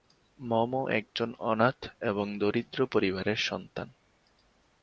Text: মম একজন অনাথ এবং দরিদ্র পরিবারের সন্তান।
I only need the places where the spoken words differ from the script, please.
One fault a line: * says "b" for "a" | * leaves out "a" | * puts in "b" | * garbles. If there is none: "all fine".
all fine